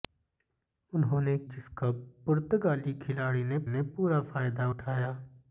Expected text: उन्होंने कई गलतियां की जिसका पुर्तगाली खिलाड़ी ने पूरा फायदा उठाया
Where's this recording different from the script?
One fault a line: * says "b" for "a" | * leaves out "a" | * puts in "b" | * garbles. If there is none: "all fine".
* leaves out "कई गलतियां की"
* puts in "ने"